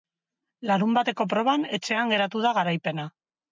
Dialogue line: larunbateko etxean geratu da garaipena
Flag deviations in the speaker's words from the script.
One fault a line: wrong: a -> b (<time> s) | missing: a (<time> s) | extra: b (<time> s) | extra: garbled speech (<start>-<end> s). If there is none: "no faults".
extra: proban (1.4 s)